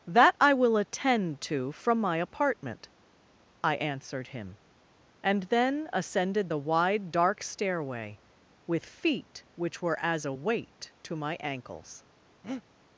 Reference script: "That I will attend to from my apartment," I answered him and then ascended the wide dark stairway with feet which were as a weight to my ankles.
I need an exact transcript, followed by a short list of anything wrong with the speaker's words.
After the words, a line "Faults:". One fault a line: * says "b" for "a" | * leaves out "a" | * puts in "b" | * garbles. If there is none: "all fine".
"That I will attend to from my apartment," I answered him and then ascended the wide dark stairway with feet which were as a weight to my ankles.
Faults:
all fine